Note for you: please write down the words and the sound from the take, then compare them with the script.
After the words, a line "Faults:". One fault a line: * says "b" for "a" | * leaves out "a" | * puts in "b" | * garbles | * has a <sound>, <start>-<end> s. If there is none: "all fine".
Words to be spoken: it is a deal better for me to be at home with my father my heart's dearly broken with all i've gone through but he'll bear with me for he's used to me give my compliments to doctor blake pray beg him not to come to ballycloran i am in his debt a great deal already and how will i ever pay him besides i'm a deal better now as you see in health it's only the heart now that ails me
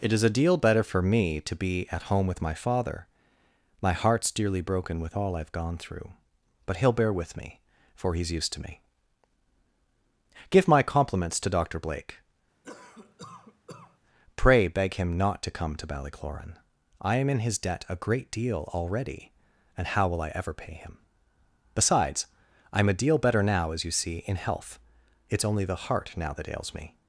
it is a deal better for me to be at home with my father my heart's dearly broken with all i've gone through but he'll bear with me for he's used to me give my compliments to doctor blake pray beg him not to come to ballycloran i am in his debt a great deal already and how will i ever pay him besides i'm a deal better now as you see in health it's only the heart now that ails me
Faults:
* has a cough, 12.6-14.0 s